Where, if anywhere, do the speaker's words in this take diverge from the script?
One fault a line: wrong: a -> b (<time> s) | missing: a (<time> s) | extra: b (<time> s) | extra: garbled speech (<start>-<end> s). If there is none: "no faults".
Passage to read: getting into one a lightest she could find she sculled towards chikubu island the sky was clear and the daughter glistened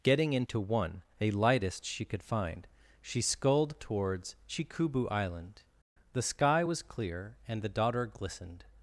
no faults